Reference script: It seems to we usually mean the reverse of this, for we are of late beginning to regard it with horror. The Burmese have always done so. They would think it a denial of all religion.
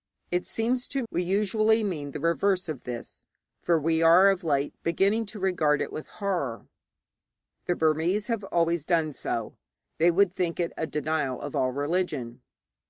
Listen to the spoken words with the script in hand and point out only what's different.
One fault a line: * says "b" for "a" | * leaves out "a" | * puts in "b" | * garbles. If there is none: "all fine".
all fine